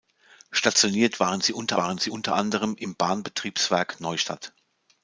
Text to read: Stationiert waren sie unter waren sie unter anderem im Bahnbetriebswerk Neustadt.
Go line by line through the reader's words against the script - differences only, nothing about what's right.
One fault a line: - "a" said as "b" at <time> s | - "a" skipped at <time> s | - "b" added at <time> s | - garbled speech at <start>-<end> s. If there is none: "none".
none